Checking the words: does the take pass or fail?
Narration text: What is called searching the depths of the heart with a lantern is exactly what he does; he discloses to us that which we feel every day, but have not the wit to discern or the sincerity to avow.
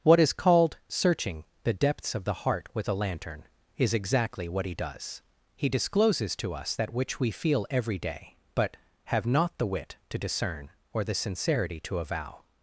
pass